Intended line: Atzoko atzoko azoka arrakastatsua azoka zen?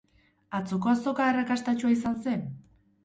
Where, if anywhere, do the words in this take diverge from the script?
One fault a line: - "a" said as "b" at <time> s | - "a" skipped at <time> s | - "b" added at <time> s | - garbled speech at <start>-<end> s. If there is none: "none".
- "atzoko" skipped at 0.9 s
- "azoka" said as "izan" at 2.0 s